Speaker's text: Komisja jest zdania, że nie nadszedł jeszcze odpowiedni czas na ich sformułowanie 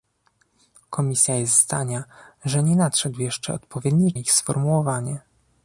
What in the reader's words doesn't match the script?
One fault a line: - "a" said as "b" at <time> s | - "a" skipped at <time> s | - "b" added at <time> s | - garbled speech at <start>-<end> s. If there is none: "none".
- "czas na" skipped at 4.1 s